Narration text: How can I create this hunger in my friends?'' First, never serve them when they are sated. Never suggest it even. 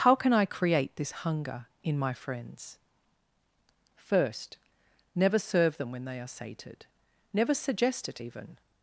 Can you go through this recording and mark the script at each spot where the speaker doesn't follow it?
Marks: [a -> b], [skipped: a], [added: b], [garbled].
How can I create this hunger in my friends?'' First, never serve them when they are sated. Never suggest it even.